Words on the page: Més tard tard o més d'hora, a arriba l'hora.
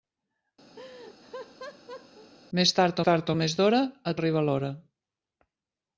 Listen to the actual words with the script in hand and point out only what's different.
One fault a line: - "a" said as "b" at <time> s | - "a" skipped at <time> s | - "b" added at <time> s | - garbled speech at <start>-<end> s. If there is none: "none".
none